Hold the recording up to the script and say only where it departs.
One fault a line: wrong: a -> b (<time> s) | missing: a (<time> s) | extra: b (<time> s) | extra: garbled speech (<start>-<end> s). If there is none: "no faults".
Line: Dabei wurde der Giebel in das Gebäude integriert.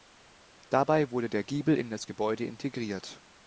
no faults